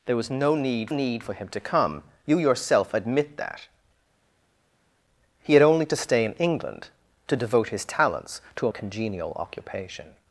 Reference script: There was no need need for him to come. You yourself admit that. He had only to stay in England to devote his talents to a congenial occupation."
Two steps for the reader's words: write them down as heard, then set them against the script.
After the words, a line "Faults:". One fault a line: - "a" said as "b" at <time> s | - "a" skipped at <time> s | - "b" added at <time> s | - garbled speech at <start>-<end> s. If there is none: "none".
There was no need need for him to come. You yourself admit that. He had only to stay in England to devote his talents to a congenial occupation."
Faults:
none